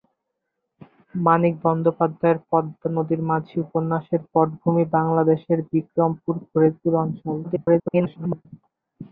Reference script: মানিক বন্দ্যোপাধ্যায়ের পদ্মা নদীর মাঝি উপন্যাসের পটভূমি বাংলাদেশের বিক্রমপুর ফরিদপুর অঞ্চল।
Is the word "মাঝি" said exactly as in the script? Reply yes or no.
yes